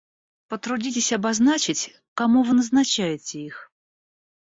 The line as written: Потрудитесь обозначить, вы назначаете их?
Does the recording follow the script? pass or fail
fail